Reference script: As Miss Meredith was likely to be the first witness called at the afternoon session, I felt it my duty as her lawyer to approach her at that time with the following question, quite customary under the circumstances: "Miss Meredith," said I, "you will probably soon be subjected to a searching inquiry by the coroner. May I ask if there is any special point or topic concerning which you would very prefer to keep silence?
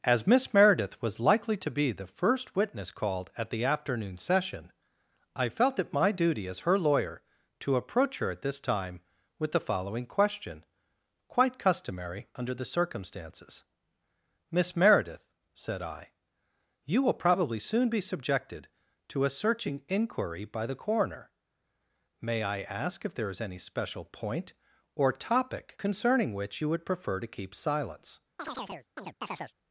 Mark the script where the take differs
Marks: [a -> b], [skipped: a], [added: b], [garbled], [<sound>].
As Miss Meredith was likely to be the first witness called at the afternoon session, I felt it my duty as her lawyer to approach her at [that -> this] time with the following question, quite customary under the circumstances: "Miss Meredith," said I, "you will probably soon be subjected to a searching inquiry by the coroner. May I ask if there is any special point or topic concerning which you would [skipped: very] prefer to keep silence? [chirp]